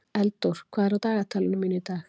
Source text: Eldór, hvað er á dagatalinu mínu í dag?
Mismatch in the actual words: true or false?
false